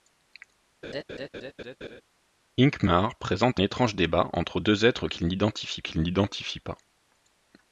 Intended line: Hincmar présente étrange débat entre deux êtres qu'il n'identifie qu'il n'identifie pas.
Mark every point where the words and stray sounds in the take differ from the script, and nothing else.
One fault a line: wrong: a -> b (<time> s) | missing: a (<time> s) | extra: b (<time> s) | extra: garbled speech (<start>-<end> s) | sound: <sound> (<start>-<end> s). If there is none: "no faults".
sound: laugh (0.8-2.0 s)